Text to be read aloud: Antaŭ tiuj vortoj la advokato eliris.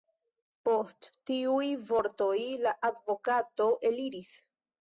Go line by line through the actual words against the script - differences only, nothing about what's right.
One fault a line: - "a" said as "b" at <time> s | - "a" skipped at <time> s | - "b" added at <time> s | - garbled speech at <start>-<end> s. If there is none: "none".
- "Antaŭ" said as "Post" at 0.7 s